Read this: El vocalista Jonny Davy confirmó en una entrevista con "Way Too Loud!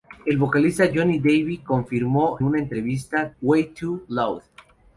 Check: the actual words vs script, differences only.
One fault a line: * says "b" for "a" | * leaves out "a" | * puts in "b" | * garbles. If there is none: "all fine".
* leaves out "en"
* leaves out "con"